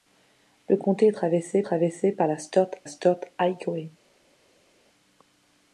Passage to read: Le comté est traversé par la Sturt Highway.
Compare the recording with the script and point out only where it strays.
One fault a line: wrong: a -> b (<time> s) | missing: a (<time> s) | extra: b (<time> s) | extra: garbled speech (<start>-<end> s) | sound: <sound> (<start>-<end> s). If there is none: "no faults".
extra: traversé (1.6 s)
extra: Sturt (2.9 s)